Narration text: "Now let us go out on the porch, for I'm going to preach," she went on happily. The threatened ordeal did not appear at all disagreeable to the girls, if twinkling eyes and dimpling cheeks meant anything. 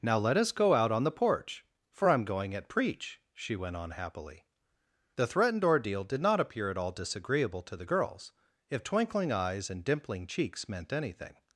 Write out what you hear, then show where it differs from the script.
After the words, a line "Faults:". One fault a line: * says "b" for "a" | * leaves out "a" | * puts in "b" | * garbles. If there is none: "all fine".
"Now let us go out on the porch, for I'm going at preach," she went on happily. The threatened ordeal did not appear at all disagreeable to the girls, if twinkling eyes and dimpling cheeks meant anything.
Faults:
* says "at" for "to"